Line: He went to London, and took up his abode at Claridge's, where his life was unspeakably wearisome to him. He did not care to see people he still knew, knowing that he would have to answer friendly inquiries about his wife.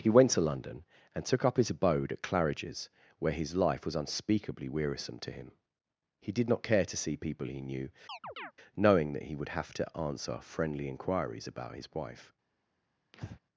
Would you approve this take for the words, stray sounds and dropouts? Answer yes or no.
no